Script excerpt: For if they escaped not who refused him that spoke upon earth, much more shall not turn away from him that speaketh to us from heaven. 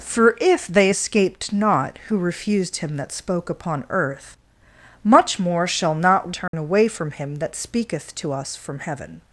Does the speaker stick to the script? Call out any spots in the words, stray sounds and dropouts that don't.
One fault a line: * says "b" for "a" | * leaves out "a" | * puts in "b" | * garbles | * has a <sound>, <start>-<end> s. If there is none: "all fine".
* has a dropout, 6.5-6.5 s